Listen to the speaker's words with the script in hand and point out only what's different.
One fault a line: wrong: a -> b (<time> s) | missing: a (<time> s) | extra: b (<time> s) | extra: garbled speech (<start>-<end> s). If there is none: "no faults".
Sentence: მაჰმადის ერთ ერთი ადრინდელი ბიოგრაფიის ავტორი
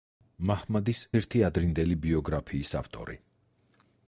missing: ერთ (1.0 s)